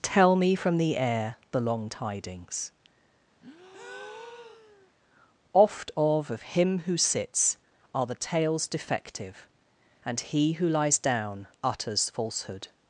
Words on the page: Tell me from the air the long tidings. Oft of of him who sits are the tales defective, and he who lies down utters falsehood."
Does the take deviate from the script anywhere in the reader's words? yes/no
no